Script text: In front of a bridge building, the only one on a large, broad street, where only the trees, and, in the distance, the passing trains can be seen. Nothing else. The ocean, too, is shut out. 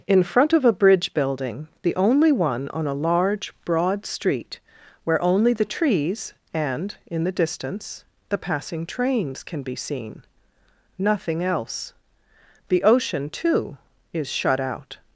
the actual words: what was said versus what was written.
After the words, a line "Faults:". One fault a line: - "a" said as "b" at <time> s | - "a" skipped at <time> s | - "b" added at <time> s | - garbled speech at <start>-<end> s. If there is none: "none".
In front of a bridge building, the only one on a large, broad street, where only the trees, and, in the distance, the passing trains can be seen. Nothing else. The ocean, too, is shut out.
Faults:
none